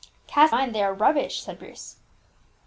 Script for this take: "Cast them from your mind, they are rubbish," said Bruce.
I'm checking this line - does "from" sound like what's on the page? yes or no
no